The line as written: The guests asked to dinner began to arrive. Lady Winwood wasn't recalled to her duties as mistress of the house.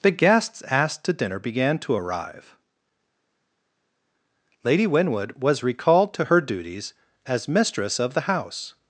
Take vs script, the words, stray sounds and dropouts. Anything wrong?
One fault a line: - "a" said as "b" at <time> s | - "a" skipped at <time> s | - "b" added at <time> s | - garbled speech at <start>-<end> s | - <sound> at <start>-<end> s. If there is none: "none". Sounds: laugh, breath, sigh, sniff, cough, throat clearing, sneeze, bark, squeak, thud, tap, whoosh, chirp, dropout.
- "wasn't" said as "was" at 5.4 s